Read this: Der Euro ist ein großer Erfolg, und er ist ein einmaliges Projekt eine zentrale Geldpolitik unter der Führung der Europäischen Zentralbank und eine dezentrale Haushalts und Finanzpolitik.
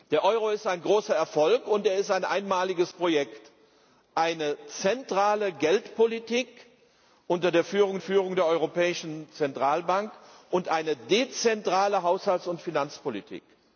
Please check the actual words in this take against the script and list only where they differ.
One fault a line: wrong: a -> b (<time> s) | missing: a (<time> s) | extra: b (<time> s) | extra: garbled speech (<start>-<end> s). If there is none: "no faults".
extra: Führung (8.0 s)